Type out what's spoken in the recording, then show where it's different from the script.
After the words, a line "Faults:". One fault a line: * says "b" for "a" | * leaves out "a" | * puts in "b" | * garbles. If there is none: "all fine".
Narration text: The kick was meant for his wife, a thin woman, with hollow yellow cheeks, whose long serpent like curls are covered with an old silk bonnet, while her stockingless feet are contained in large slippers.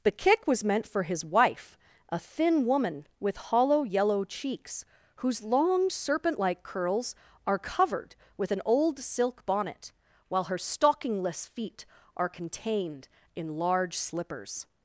The kick was meant for his wife, a thin woman, with hollow yellow cheeks, whose long serpent like curls are covered with an old silk bonnet, while her stockingless feet are contained in large slippers.
Faults:
all fine